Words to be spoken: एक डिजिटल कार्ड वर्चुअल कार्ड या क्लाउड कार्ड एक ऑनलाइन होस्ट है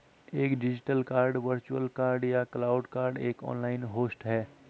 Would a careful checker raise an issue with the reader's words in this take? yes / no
no